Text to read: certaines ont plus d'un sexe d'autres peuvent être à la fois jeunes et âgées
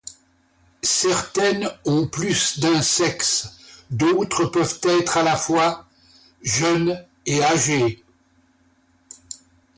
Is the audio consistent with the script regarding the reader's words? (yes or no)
yes